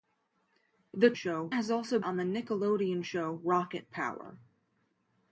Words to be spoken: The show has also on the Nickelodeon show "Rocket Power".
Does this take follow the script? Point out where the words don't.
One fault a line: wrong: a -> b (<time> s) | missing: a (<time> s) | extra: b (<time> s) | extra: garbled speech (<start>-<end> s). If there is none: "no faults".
no faults